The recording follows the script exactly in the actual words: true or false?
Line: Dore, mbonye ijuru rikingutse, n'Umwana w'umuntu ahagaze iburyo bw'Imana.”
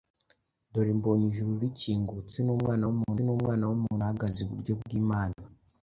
false